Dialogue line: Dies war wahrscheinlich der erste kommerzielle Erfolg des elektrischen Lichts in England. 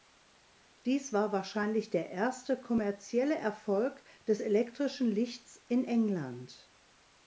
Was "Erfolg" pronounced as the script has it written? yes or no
yes